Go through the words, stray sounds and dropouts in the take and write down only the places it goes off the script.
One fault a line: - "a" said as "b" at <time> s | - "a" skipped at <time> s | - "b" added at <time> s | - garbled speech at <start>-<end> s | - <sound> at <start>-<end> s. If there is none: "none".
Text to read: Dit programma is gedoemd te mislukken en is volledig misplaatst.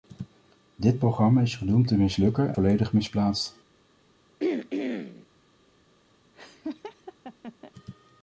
- "en is" skipped at 2.5 s
- throat clearing at 4.4-5.3 s
- laugh at 6.3-7.7 s